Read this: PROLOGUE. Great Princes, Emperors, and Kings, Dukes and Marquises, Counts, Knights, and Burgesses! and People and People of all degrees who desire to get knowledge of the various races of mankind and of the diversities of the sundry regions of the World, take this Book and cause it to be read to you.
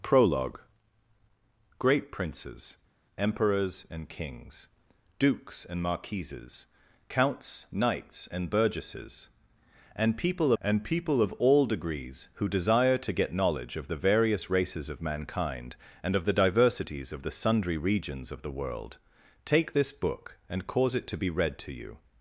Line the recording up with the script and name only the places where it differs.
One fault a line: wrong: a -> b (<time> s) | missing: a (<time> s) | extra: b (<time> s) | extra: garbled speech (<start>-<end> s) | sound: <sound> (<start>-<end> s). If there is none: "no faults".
no faults